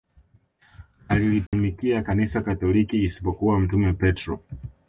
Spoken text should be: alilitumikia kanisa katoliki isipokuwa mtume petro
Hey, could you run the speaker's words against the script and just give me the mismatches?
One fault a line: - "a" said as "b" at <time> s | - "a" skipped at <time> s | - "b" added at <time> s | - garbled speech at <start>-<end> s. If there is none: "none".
none